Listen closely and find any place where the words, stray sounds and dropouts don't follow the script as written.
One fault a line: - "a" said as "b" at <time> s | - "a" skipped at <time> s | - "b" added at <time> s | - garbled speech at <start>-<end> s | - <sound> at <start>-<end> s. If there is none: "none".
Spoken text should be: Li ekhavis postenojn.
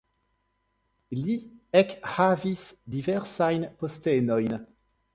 - "diversajn" added at 3.0 s